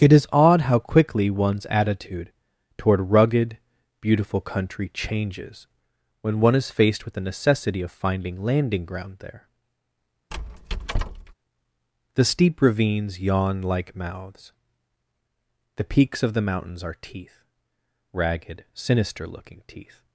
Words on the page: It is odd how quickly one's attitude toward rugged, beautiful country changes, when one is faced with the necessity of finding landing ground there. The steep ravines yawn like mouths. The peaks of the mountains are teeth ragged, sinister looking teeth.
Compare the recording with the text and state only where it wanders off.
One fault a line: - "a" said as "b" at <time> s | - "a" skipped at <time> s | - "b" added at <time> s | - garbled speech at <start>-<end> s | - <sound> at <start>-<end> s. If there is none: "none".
- squeak at 10.3-11.3 s